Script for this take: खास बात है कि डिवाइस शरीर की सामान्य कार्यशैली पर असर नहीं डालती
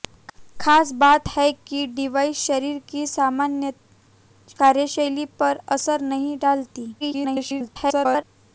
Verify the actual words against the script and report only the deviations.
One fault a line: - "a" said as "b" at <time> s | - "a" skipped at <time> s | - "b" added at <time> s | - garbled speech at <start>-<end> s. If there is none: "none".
- garbled speech at 7.0-8.2 s